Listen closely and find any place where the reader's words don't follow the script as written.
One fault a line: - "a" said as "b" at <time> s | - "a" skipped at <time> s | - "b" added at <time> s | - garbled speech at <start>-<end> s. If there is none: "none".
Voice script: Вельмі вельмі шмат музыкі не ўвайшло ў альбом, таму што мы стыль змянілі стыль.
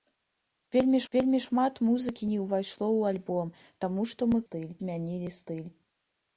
none